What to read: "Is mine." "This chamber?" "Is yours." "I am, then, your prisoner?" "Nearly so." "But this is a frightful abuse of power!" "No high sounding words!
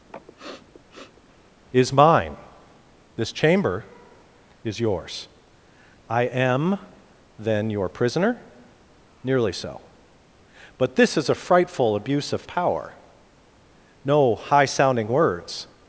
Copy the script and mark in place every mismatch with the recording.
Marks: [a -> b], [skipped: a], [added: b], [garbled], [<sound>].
[sniff] "Is mine." "This chamber?" "Is yours." "I am, then, your prisoner?" "Nearly so." "But this is a frightful abuse of power!" "No high sounding words!